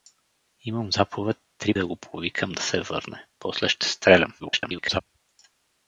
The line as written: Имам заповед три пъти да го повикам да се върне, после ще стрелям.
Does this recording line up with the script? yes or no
no